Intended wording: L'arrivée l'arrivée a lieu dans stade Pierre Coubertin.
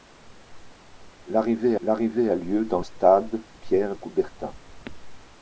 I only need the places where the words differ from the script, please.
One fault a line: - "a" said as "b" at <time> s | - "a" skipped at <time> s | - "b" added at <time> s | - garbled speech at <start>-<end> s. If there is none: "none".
none